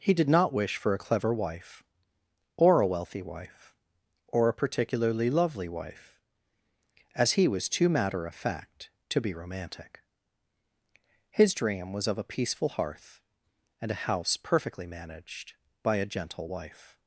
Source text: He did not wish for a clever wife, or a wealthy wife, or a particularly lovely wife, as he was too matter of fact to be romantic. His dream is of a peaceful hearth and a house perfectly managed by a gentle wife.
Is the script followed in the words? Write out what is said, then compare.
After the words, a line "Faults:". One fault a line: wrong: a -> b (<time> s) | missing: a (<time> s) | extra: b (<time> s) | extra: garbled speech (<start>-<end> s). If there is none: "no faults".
He did not wish for a clever wife, or a wealthy wife, or a particularly lovely wife, as he was too matter of fact to be romantic. His dream was of a peaceful hearth and a house perfectly managed by a gentle wife.
Faults:
wrong: is -> was (11.9 s)